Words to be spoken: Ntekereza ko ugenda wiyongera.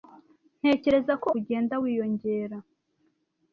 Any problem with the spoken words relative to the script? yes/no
no